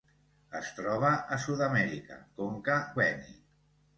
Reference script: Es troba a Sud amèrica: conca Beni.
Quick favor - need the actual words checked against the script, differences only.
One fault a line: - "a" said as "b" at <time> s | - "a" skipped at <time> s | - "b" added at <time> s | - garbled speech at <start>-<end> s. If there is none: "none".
none